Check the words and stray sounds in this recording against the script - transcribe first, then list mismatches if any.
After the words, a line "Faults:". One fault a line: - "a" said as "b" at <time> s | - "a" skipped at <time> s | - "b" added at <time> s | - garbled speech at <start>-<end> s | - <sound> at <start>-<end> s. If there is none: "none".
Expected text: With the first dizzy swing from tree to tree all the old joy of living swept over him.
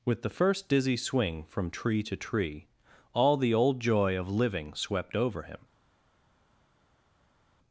With the first dizzy swing from tree to tree all the old joy of living swept over him.
Faults:
none